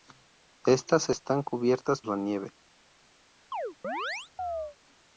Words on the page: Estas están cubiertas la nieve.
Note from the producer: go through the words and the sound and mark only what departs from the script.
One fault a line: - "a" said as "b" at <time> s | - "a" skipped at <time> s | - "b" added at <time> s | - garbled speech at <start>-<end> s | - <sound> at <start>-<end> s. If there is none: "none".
- chirp at 3.5-4.8 s